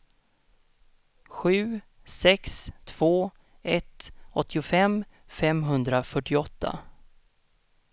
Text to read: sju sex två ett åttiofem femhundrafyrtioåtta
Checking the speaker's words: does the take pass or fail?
pass